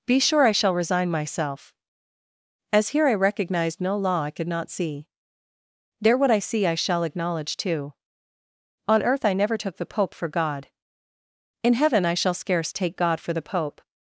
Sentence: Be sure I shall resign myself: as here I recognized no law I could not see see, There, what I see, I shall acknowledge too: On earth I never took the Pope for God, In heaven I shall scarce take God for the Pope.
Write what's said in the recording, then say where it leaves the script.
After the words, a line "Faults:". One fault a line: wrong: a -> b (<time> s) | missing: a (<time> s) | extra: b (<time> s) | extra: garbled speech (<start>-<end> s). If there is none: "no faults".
Be sure I shall resign myself: as here I recognized no law I could not see, There, what I see, I shall acknowledge too: On earth I never took the Pope for God, In heaven I shall scarce take God for the Pope.
Faults:
missing: see (5.1 s)